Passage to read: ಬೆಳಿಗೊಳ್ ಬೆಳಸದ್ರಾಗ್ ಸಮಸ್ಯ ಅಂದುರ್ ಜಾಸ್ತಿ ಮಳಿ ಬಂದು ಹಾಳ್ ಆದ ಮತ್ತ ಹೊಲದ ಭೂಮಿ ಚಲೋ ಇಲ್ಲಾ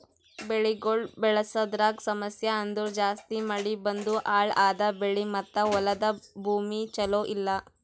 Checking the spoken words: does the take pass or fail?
fail